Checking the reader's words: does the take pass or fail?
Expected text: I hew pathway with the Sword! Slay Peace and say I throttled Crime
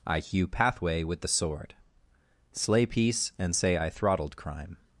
pass